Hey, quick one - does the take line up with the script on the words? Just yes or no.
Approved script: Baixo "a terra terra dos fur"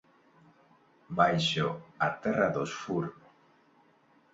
no